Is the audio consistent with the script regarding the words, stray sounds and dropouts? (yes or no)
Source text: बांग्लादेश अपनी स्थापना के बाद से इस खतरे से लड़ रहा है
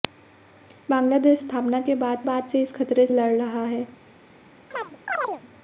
no